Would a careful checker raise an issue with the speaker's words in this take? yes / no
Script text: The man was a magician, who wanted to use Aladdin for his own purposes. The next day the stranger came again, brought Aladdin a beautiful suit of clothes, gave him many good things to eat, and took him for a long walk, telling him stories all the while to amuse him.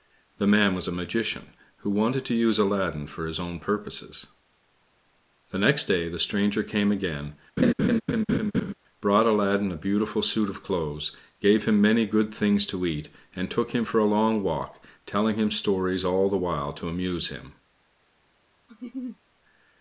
no